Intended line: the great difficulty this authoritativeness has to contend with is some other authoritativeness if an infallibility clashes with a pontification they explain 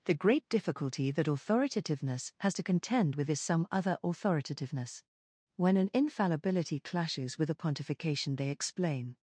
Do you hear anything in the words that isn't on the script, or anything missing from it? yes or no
yes